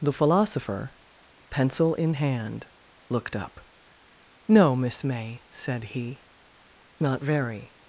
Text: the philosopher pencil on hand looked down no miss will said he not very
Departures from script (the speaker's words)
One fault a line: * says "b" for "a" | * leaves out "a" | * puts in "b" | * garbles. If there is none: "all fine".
* says "in" for "on"
* says "up" for "down"
* says "may" for "will"